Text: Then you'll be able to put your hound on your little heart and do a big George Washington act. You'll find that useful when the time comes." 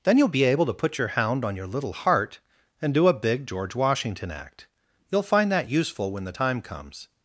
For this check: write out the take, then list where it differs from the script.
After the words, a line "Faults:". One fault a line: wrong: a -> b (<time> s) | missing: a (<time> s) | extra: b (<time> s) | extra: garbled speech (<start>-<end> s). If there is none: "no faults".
Then you'll be able to put your hound on your little heart and do a big George Washington act. You'll find that useful when the time comes."
Faults:
no faults